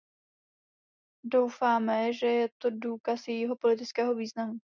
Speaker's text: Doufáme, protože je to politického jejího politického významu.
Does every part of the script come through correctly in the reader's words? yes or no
no